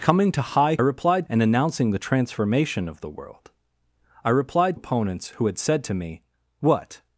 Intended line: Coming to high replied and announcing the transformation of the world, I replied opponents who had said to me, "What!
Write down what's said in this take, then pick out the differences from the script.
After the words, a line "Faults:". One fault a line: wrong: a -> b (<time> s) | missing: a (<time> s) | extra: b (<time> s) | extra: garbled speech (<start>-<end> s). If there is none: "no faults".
Coming to high replied and announcing the transformation of the world, I replied opponents who had said to me, "What!
Faults:
no faults